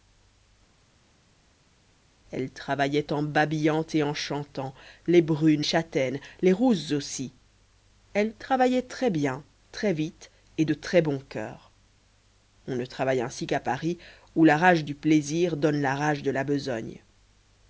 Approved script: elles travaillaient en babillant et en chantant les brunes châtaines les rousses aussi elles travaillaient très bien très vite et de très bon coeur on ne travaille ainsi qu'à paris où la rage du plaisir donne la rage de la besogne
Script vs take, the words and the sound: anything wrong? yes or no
no